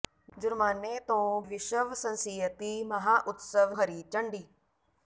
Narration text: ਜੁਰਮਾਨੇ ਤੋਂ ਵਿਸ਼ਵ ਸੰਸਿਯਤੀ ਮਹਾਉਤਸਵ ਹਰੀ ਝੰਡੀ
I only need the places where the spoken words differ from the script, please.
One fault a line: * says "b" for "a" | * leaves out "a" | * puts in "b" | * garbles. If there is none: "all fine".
all fine